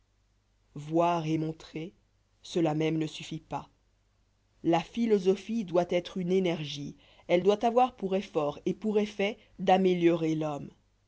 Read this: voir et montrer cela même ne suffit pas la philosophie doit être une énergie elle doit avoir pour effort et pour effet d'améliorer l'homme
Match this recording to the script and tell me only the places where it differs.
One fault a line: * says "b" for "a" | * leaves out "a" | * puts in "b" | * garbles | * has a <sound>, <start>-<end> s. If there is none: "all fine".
all fine